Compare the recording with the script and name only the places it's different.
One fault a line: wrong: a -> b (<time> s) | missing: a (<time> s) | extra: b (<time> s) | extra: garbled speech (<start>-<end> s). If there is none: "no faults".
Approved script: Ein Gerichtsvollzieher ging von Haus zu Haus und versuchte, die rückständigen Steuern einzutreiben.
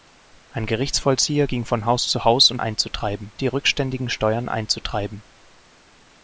wrong: versuchte -> einzutreiben (2.6 s)